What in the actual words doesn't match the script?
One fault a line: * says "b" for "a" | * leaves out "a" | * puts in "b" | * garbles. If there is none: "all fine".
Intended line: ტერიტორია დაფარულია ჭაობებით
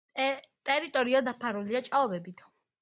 all fine